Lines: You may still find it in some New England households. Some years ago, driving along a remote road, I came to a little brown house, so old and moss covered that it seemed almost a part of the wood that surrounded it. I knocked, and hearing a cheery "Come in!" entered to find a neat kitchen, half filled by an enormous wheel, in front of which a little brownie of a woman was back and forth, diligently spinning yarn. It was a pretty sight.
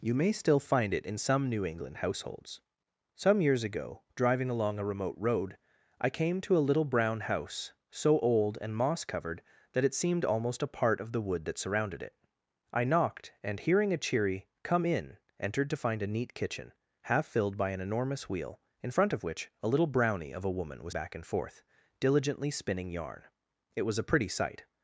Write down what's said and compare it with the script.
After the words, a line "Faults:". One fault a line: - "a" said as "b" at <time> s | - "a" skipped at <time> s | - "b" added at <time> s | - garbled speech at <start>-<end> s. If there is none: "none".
You may still find it in some New England households. Some years ago, driving along a remote road, I came to a little brown house, so old and moss covered that it seemed almost a part of the wood that surrounded it. I knocked, and hearing a cheery "Come in!" entered to find a neat kitchen, half filled by an enormous wheel, in front of which a little brownie of a woman was back and forth, diligently spinning yarn. It was a pretty sight.
Faults:
none